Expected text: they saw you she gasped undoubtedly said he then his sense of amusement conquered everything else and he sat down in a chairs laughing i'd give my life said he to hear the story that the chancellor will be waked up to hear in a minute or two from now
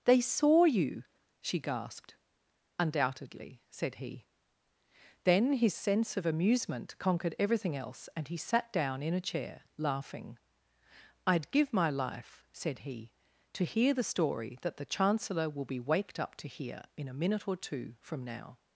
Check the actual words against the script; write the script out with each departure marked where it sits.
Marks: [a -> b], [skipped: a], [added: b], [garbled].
they saw you she gasped undoubtedly said he then his sense of amusement conquered everything else and he sat down in a [chairs -> chair] laughing i'd give my life said he to hear the story that the chancellor will be waked up to hear in a minute or two from now